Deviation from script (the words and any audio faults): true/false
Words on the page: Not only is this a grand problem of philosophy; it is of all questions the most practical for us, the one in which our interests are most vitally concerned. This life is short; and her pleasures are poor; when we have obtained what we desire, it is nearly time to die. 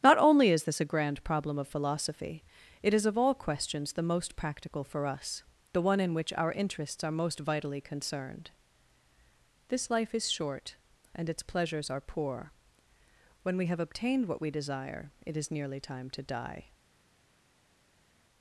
true